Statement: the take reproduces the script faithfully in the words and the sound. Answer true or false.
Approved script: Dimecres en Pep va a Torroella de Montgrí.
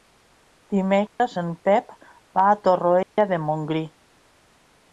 false